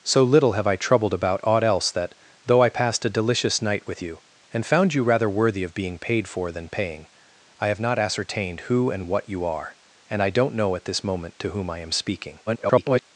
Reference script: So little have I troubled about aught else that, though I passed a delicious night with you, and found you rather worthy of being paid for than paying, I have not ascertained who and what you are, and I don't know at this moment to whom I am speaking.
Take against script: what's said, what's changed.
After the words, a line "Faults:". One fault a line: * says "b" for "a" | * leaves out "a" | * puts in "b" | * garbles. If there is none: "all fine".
So little have I troubled about aught else that, though I passed a delicious night with you, and found you rather worthy of being paid for than paying, I have not ascertained who and what you are, and I don't know at this moment to whom I am speaking. [garbled]
Faults:
* garbles